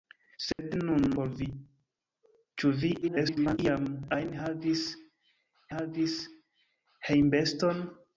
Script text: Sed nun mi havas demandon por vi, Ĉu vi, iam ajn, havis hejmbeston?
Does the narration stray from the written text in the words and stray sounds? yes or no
yes